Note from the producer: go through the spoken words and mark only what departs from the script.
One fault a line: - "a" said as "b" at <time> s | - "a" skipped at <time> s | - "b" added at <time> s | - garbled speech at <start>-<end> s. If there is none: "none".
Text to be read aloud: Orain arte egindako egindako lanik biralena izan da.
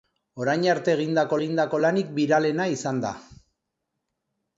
none